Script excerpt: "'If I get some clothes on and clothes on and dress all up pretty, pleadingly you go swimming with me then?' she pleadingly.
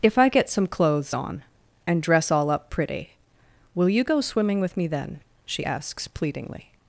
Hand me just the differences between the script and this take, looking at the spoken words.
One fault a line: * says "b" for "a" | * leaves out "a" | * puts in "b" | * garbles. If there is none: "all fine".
* leaves out "clothes on and"
* says "will" for "pleadingly"
* puts in "asks"